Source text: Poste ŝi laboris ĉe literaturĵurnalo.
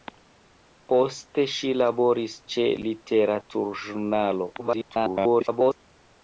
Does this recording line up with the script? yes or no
no